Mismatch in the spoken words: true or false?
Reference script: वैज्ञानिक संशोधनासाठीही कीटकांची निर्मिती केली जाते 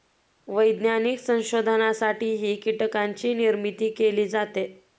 false